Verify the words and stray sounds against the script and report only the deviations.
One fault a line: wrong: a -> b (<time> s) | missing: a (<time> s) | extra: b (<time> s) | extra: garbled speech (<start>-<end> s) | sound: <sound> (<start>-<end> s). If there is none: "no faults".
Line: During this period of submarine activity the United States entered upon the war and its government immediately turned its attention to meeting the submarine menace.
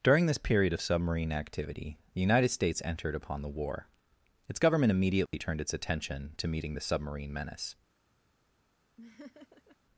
missing: and (3.9 s)
sound: dropout (5.3-5.3 s)
sound: laugh (9.0-9.8 s)